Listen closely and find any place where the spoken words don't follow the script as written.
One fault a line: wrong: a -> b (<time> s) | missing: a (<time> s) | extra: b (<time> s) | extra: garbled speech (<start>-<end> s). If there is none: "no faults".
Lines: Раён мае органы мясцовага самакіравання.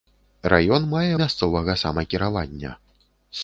missing: органы (1.1 s)